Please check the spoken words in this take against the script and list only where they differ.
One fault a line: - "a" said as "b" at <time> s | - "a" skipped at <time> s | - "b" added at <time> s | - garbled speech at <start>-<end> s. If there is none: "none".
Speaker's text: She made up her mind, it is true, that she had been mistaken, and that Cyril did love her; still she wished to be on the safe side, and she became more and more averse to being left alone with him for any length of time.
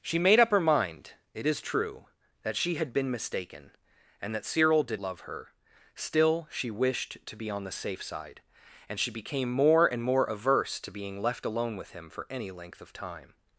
none